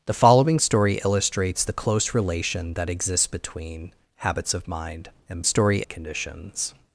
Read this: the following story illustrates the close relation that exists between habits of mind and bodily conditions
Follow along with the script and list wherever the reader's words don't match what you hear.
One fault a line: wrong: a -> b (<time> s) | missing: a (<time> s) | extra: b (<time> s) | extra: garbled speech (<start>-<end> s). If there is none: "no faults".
wrong: bodily -> story (5.4 s)